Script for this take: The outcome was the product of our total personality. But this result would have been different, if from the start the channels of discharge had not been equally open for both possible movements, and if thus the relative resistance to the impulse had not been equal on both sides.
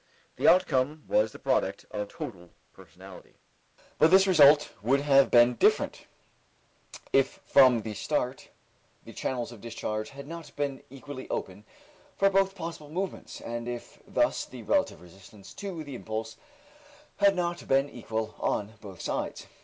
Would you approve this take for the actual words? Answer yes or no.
no